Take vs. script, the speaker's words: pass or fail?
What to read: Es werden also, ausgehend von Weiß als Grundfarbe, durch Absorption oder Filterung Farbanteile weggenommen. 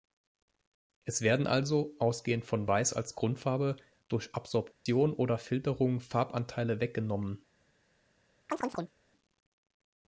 pass